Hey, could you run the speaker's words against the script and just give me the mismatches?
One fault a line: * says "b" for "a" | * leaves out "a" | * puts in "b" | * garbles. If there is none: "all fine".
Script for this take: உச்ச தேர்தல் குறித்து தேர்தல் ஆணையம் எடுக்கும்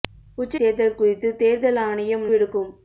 all fine